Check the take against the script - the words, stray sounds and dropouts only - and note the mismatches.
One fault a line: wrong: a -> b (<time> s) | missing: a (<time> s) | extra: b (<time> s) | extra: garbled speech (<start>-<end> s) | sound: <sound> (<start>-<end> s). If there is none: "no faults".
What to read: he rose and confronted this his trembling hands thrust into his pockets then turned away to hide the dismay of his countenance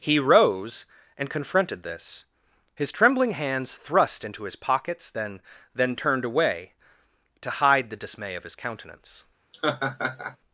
extra: then (5.8 s)
sound: laugh (9.5-10.4 s)